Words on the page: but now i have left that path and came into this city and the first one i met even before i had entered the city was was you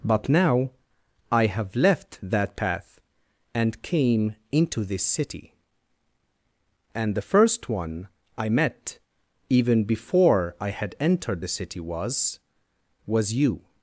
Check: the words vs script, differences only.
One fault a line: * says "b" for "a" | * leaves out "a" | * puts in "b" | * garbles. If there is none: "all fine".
all fine